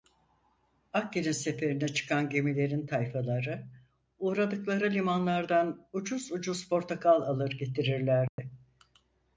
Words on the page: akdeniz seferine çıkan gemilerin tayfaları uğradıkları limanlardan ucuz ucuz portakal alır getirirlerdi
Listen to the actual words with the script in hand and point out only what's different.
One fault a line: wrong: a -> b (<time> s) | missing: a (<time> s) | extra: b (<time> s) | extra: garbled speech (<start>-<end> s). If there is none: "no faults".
no faults